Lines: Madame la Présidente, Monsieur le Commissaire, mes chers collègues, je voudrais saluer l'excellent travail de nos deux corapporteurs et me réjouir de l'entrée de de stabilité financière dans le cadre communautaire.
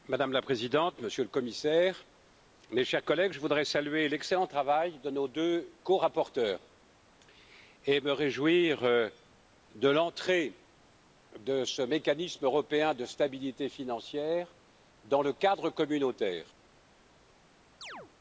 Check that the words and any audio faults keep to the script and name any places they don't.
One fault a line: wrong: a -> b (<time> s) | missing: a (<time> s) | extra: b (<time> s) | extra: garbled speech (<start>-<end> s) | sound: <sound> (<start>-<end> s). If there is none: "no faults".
extra: ce mécanisme européen (11.6 s)
sound: chirp (17.8-18.1 s)